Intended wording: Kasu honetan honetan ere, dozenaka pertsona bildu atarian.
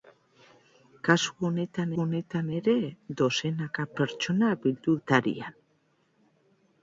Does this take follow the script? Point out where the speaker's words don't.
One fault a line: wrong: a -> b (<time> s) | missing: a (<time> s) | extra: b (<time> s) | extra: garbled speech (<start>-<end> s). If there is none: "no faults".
no faults